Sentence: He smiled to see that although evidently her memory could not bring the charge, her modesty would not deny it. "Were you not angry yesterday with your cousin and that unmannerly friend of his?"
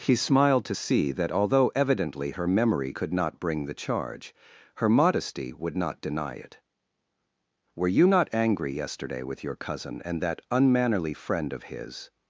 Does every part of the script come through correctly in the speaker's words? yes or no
yes